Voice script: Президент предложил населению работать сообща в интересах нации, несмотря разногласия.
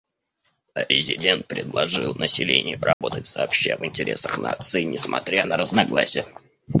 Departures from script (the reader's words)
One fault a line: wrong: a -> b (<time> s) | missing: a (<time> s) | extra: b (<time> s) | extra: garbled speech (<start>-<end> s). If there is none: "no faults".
extra: на (5.4 s)